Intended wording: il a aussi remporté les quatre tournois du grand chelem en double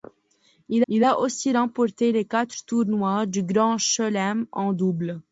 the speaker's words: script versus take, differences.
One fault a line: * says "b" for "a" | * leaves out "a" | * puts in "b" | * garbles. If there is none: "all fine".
* puts in "il"